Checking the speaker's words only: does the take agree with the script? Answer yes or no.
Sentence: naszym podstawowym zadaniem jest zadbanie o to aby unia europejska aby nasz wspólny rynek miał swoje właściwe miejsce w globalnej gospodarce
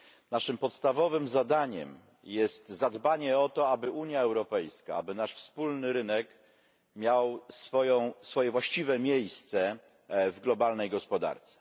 yes